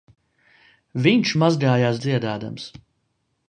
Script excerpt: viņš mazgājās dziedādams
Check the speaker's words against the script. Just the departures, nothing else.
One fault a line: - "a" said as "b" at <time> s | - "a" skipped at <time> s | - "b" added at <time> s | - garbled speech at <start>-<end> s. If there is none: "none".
none